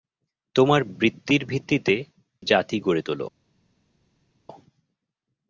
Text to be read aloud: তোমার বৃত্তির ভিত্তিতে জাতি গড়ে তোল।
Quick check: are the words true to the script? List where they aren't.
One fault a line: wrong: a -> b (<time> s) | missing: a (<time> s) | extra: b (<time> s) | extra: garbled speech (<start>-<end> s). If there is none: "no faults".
no faults